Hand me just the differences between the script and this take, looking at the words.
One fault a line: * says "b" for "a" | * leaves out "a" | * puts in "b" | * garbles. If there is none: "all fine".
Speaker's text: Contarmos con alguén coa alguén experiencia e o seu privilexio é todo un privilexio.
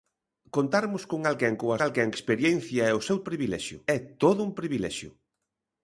all fine